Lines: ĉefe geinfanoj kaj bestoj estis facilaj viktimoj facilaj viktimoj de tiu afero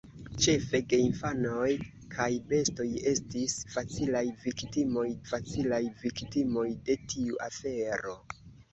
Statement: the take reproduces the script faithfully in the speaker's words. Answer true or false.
true